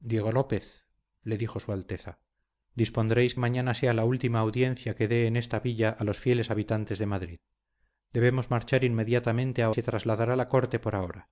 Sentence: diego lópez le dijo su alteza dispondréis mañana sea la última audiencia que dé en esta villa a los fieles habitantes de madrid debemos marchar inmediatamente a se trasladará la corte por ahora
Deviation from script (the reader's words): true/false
false